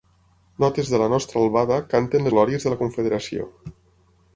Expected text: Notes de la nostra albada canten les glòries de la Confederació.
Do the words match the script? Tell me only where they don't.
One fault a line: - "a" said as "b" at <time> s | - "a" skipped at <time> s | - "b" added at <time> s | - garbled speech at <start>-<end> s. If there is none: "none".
- "les" skipped at 2.3 s